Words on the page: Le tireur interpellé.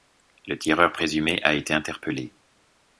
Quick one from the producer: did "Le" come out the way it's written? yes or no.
yes